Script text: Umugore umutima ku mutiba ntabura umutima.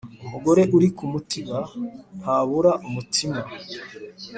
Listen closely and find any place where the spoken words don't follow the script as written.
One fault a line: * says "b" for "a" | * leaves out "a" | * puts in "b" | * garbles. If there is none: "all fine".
* says "uri" for "umutima"